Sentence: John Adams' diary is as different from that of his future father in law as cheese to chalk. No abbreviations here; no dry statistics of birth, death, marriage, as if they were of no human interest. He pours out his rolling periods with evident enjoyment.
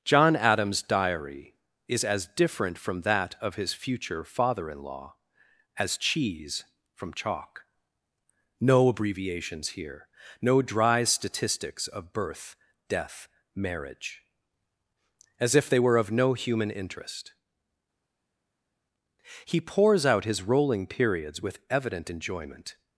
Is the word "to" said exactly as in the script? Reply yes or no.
no